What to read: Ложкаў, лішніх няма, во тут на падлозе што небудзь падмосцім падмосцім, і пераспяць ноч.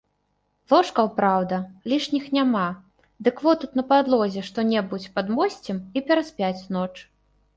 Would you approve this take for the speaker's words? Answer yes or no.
no